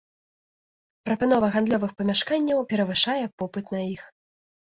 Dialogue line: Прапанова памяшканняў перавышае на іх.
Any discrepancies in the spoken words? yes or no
yes